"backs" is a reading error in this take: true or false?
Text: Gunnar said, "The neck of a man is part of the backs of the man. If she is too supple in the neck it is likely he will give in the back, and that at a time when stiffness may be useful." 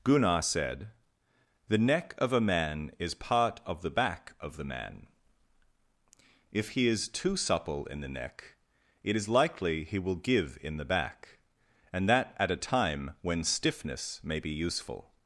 true